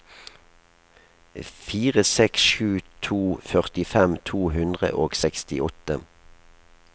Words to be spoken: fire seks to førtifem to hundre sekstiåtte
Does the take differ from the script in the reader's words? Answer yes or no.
yes